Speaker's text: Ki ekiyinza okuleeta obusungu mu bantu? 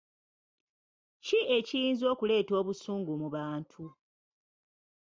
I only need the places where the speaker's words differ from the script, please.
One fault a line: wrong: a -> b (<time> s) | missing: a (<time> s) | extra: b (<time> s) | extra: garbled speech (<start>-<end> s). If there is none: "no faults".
no faults